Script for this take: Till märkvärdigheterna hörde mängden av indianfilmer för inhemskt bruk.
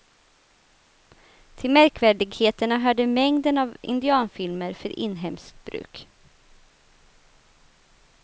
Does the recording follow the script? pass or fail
pass